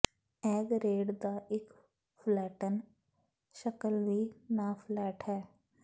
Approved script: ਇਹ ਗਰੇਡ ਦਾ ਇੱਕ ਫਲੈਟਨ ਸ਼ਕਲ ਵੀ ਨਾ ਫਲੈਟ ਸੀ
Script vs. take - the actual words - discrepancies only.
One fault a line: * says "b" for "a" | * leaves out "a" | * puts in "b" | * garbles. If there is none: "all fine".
* says "ਹੈ" for "ਸੀ"